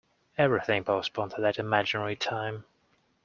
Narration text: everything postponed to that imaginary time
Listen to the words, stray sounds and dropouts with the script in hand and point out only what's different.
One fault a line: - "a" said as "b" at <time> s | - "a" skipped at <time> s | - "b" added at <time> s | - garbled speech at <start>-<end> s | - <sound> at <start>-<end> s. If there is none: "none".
none